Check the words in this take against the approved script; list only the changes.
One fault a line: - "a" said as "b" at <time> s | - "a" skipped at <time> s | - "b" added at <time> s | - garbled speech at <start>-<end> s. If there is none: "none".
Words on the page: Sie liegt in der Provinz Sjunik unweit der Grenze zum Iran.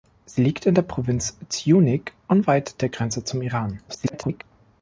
- garbled speech at 3.9-4.4 s